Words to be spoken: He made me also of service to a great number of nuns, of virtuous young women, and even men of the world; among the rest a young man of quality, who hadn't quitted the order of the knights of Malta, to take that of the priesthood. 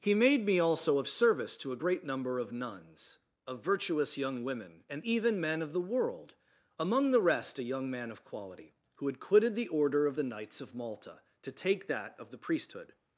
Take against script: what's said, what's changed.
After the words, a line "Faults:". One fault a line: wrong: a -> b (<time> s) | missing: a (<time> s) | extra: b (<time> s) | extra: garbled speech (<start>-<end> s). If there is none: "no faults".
He made me also of service to a great number of nuns, of virtuous young women, and even men of the world; among the rest a young man of quality, who had quitted the order of the knights of Malta, to take that of the priesthood.
Faults:
wrong: hadn't -> had (9.1 s)